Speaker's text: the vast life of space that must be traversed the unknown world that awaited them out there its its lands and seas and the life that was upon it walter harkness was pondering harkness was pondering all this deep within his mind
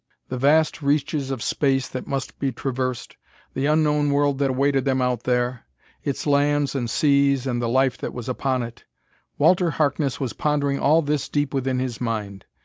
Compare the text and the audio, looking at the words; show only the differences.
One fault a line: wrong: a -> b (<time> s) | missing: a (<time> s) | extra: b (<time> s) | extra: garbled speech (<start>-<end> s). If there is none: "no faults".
wrong: life -> reaches (0.8 s)
missing: its (6.3 s)
missing: harkness was pondering (10.8 s)